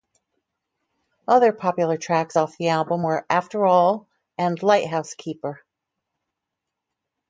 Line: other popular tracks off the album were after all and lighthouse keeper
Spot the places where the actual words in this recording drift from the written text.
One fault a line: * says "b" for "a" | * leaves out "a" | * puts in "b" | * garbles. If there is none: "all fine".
all fine